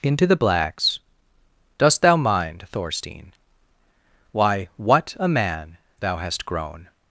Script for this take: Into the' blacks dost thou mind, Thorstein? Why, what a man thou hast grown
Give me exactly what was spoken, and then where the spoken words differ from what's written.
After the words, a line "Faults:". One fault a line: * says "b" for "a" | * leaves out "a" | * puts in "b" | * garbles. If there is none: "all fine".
Into the' blacks dost thou mind, Thorstein? Why, what a man thou hast grown
Faults:
all fine